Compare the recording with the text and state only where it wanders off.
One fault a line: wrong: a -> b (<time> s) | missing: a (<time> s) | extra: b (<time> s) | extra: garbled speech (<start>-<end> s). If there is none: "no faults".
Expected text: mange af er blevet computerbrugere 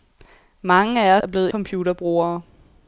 no faults